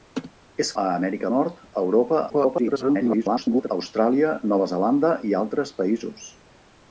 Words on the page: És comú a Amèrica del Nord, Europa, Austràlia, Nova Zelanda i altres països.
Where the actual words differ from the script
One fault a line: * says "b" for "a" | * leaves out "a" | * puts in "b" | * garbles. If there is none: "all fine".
* leaves out "comú"
* leaves out "del"
* garbles